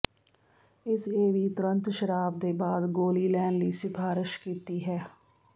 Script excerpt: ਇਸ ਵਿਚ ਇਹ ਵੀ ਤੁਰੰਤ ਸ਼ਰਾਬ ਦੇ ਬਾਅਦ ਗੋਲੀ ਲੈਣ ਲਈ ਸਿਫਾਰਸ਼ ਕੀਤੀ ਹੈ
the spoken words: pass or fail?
fail